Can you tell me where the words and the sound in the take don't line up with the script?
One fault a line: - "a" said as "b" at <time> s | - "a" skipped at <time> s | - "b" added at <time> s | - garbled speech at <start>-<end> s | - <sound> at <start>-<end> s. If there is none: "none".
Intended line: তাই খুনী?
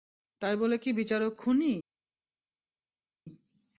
- "বলে কি বিচারক" added at 0.6 s